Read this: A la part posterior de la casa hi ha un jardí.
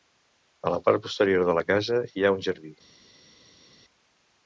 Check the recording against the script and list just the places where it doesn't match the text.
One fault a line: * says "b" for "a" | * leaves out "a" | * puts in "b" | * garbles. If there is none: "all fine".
all fine